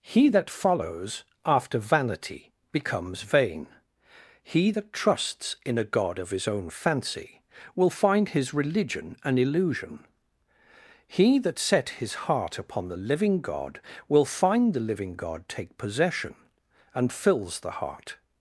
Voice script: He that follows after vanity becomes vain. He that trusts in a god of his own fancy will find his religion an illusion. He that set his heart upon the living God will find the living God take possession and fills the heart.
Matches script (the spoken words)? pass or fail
pass